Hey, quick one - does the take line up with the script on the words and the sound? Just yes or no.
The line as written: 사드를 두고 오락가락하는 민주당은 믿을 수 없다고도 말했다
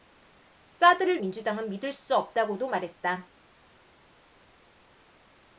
no